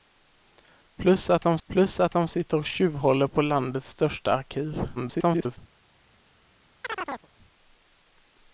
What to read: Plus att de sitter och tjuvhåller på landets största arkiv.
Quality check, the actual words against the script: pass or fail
fail